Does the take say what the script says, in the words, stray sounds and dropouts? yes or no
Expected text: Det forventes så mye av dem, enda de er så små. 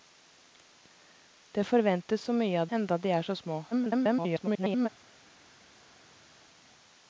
no